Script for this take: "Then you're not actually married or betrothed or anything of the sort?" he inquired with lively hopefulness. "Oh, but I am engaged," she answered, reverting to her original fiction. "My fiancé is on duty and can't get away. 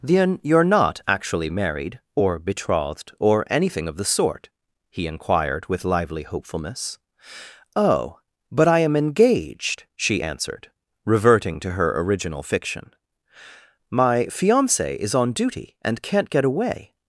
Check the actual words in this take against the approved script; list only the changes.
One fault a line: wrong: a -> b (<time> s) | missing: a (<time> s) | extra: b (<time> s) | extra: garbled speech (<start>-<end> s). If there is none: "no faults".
no faults